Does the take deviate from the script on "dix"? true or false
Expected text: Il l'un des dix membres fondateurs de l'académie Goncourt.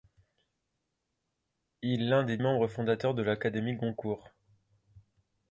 true